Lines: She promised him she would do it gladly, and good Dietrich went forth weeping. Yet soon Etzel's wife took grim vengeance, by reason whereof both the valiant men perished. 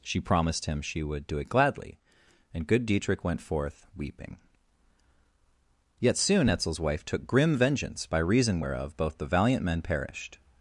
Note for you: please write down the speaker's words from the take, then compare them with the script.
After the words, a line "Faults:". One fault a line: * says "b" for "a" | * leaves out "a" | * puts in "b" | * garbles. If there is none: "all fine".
She promised him she would do it gladly, and good Dietrich went forth weeping. Yet soon Etzel's wife took grim vengeance, by reason whereof both the valiant men perished.
Faults:
all fine